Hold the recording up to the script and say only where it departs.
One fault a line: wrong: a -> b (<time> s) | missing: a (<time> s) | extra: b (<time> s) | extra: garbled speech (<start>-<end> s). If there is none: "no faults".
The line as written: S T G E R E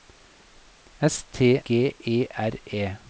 no faults